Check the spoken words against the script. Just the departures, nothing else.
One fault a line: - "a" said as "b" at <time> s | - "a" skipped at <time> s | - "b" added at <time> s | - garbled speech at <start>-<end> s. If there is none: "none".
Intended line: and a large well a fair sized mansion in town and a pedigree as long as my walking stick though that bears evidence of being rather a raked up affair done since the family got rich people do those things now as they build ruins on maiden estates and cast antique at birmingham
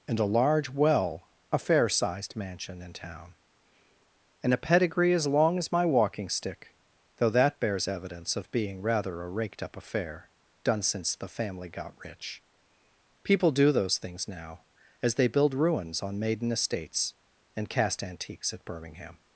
- "antique" said as "antiques" at 18.0 s